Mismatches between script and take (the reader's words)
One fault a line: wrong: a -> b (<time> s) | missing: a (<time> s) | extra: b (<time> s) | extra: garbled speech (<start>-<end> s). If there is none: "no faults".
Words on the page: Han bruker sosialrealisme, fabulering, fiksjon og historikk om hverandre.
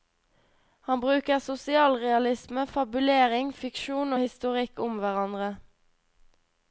no faults